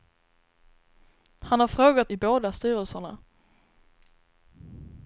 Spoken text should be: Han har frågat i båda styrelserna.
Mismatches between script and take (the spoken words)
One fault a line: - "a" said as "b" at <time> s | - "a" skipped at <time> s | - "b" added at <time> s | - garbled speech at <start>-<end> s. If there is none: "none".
none